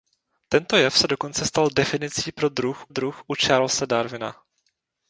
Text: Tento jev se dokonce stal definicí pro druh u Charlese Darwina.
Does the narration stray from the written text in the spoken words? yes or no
yes